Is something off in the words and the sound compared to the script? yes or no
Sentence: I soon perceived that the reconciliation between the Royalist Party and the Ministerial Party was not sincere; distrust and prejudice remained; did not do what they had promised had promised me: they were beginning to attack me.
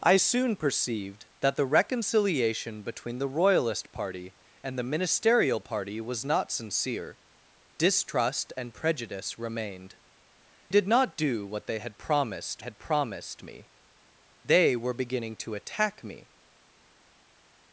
no